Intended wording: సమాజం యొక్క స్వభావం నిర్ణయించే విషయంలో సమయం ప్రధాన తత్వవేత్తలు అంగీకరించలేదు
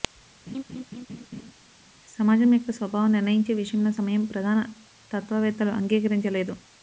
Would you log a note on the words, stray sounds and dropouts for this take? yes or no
yes